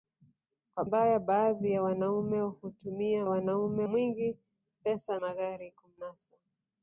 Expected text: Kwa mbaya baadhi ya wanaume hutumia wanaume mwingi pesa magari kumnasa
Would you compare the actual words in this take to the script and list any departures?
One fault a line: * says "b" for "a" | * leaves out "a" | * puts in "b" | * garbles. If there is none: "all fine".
all fine